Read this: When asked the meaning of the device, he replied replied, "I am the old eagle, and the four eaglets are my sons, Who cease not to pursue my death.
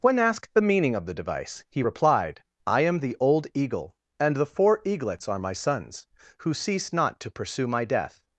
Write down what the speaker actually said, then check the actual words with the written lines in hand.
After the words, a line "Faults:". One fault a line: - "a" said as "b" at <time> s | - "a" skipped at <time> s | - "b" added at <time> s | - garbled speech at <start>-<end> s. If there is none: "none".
When asked the meaning of the device, he replied, "I am the old eagle, and the four eaglets are my sons, Who cease not to pursue my death.
Faults:
- "replied" skipped at 2.4 s